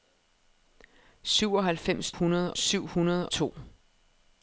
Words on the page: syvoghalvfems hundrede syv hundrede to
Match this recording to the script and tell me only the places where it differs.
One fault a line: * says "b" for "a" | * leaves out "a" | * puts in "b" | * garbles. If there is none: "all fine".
all fine